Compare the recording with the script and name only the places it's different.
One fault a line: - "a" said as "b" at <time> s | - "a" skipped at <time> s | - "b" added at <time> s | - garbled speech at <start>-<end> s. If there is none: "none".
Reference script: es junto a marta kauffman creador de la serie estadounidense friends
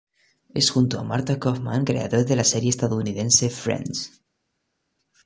none